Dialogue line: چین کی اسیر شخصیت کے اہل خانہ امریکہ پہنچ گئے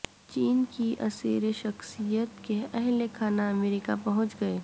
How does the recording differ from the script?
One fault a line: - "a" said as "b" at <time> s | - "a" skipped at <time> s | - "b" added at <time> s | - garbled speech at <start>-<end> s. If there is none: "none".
none